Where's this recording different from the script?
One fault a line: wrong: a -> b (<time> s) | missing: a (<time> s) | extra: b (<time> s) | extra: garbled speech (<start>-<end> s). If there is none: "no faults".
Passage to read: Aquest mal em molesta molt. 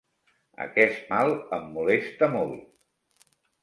no faults